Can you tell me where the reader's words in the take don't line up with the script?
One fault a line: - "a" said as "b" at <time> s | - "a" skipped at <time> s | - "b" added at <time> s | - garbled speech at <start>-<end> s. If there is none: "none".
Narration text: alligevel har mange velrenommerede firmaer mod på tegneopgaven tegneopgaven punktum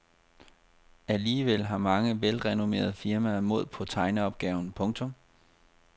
- "tegneopgaven" skipped at 4.7 s